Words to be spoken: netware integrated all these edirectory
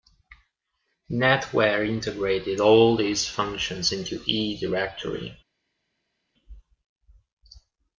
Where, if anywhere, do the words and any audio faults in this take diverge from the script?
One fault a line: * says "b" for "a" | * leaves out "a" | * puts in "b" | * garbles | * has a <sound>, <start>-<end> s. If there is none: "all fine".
* puts in "functions into"